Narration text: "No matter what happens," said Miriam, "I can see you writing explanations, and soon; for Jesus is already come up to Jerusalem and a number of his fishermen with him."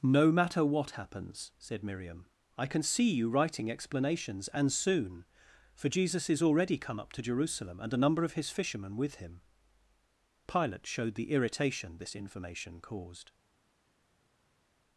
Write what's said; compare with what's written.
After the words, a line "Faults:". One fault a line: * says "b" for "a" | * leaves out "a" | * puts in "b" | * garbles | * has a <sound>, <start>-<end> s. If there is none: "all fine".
"No matter what happens," said Miriam, "I can see you writing explanations, and soon; for Jesus is already come up to Jerusalem and a number of his fishermen with him." Pilate showed the irritation this information caused
Faults:
* puts in "Pilate showed the irritation this information caused"